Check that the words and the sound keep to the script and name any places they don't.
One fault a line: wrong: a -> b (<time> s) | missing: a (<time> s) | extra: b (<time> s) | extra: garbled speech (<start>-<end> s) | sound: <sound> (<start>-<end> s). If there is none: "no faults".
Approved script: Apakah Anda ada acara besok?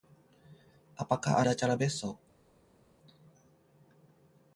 missing: Anda (1.4 s)